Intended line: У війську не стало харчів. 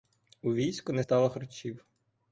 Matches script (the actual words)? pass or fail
pass